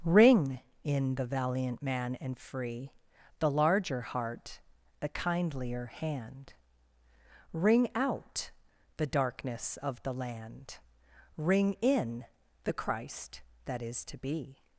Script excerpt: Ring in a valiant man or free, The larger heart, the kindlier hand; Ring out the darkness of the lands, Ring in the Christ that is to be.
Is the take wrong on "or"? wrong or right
wrong